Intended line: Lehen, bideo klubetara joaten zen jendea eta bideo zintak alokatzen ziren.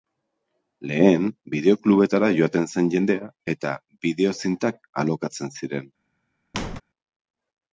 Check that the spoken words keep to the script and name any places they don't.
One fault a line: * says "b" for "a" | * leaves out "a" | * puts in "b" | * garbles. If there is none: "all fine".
all fine